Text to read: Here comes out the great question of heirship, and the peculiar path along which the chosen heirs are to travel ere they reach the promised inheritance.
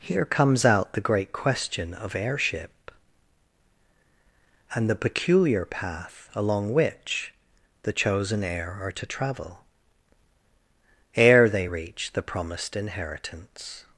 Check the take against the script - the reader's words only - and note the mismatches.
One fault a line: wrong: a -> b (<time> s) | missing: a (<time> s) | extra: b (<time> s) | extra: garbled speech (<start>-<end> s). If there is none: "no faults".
wrong: heirs -> heir (8.4 s)